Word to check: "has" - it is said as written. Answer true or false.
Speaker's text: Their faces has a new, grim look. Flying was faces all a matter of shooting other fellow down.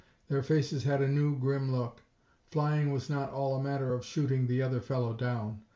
false